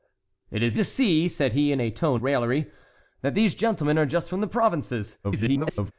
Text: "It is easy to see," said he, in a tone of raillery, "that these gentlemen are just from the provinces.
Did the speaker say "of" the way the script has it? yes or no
no